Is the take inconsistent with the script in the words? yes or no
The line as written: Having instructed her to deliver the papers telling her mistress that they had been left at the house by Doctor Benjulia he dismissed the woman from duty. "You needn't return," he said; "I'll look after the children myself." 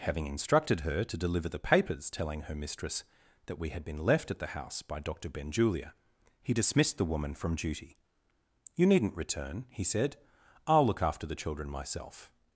yes